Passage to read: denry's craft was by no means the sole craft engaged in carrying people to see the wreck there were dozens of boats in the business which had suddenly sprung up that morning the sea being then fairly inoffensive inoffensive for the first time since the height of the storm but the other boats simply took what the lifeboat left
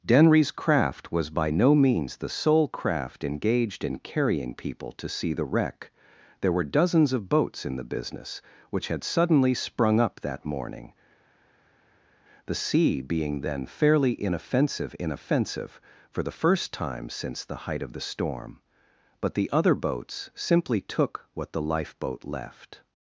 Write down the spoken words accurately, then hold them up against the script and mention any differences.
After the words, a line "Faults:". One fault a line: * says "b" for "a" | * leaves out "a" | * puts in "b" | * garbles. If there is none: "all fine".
denry's craft was by no means the sole craft engaged in carrying people to see the wreck there were dozens of boats in the business which had suddenly sprung up that morning the sea being then fairly inoffensive inoffensive for the first time since the height of the storm but the other boats simply took what the lifeboat left
Faults:
all fine